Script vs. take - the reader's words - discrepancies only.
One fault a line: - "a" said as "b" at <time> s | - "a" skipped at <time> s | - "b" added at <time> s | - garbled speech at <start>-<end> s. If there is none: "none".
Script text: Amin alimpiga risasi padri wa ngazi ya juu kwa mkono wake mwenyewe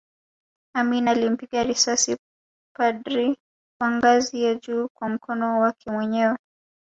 none